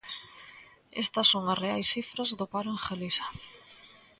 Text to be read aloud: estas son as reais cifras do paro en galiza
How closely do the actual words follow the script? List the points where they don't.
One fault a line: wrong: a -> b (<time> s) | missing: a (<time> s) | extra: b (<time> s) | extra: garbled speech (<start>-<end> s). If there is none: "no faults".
no faults